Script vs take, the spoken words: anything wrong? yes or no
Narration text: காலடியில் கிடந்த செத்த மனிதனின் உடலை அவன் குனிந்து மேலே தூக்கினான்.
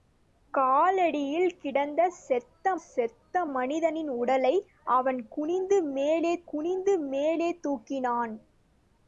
yes